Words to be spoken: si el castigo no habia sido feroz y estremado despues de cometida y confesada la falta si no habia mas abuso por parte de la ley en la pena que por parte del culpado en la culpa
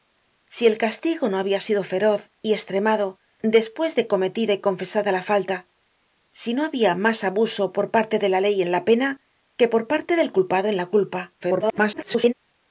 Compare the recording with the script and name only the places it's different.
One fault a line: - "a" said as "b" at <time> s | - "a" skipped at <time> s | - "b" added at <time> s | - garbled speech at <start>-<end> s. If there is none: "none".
- garbled speech at 11.4-12.3 s